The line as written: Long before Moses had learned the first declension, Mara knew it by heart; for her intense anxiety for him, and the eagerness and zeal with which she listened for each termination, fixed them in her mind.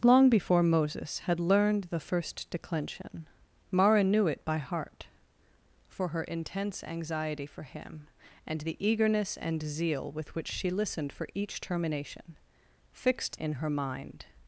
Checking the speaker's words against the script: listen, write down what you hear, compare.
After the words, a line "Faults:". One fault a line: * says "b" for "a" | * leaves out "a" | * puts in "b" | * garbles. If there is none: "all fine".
Long before Moses had learned the first declension, Mara knew it by heart; for her intense anxiety for him, and the eagerness and zeal with which she listened for each termination, fixed in her mind.
Faults:
* leaves out "them"